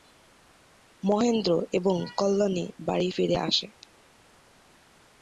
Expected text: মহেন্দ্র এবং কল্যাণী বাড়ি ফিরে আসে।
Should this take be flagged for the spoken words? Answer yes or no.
no